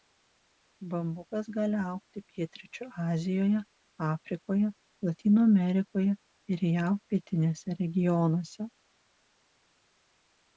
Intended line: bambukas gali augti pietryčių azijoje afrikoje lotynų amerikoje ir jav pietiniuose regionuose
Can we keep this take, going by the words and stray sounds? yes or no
yes